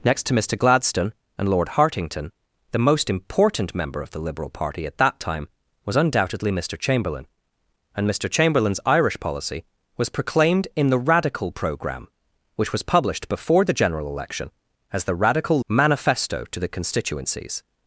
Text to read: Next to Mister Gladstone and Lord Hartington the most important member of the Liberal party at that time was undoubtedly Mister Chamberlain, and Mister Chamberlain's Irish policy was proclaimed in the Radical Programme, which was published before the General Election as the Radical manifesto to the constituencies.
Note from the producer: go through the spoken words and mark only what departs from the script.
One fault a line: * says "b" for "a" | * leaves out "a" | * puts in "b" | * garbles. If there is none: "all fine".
all fine